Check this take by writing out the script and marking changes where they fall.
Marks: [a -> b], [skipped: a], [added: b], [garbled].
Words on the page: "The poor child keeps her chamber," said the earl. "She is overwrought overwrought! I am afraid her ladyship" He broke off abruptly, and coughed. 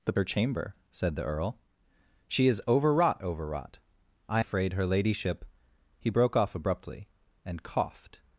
"The [skipped: poor child keeps] her chamber," said the earl. "She is overwrought overwrought! I [skipped: am] afraid her ladyship" He broke off abruptly, and coughed.